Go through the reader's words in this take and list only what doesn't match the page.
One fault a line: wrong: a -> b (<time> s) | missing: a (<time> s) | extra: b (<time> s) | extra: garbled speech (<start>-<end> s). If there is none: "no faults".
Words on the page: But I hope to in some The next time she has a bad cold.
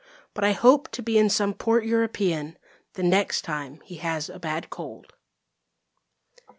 extra: be (1.0 s)
extra: port European (1.5 s)
wrong: she -> he (3.9 s)